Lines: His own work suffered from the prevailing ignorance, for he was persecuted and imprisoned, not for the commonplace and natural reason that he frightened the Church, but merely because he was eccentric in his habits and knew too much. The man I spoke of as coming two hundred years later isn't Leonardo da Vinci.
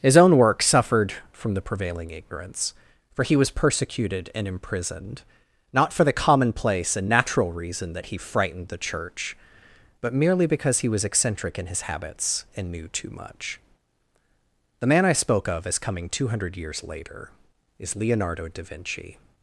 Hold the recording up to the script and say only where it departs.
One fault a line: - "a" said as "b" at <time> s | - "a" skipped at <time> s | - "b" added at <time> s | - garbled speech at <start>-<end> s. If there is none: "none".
- "isn't" said as "is" at 17.8 s